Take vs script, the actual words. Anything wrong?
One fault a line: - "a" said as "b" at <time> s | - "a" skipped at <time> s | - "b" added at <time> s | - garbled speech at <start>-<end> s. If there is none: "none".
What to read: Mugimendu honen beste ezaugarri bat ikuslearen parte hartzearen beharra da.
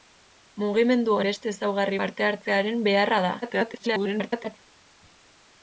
- "honen" skipped at 1.2 s
- "bat ikuslearen" skipped at 2.0 s
- garbled speech at 3.4-4.6 s